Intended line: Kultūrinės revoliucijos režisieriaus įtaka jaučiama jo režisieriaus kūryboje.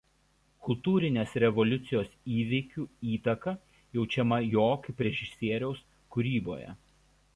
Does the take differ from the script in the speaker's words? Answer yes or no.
yes